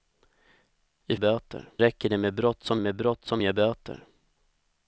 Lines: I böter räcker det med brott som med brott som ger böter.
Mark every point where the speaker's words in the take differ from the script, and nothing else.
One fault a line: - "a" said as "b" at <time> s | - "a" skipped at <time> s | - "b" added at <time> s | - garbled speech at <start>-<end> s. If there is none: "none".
none